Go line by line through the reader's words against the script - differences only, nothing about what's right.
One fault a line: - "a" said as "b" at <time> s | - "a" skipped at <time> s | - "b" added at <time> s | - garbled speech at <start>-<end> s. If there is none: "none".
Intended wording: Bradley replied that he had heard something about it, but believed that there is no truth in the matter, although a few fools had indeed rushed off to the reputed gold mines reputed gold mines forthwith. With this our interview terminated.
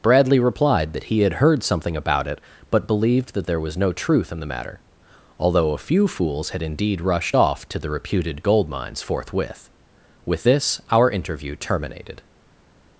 - "is" said as "was" at 3.6 s
- "reputed gold mines" skipped at 9.0 s